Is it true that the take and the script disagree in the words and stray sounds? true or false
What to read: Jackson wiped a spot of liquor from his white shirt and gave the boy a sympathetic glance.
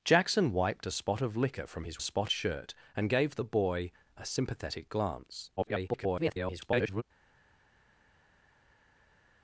true